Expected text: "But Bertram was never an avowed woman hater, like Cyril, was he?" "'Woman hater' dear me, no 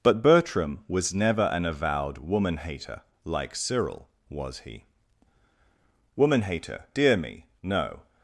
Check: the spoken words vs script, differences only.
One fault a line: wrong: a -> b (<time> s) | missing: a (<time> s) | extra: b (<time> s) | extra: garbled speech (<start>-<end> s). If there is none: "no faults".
no faults